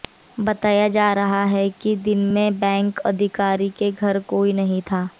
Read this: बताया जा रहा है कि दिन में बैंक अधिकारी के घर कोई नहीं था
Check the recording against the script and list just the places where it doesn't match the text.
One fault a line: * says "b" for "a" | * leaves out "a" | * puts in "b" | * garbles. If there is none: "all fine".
all fine